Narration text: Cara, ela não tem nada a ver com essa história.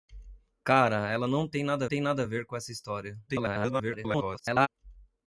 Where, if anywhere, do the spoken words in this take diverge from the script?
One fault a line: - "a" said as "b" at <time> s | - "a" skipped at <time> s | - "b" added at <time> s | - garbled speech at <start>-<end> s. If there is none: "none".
- "tem nada" added at 1.8 s
- garbled speech at 3.3-4.7 s